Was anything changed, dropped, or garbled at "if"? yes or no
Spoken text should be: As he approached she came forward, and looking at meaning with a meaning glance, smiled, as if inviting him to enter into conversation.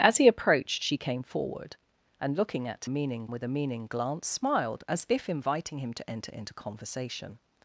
no